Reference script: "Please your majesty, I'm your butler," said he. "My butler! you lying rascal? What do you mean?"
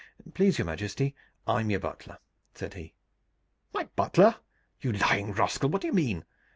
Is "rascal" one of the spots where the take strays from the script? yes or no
no